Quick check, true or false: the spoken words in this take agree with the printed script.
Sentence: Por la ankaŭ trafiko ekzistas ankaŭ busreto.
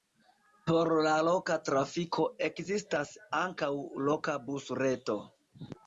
false